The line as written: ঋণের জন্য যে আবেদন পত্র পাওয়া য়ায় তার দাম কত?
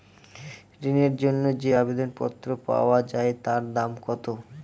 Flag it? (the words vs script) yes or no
no